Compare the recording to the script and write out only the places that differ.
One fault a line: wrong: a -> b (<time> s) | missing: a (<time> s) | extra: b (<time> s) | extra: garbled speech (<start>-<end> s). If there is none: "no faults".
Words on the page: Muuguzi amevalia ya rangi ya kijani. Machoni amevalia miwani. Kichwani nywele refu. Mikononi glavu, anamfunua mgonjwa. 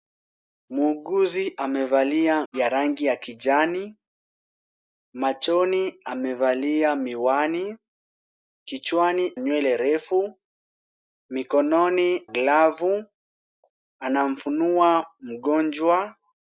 no faults